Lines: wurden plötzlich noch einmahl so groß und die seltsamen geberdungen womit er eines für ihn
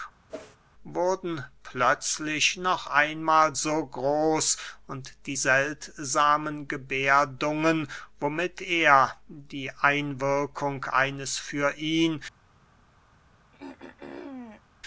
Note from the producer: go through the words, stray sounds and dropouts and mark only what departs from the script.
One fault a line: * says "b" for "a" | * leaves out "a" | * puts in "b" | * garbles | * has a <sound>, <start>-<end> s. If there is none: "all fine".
* has a whoosh, 0.3-0.6 s
* puts in "die einwirkung"
* has a throat clearing, 13.5-14.6 s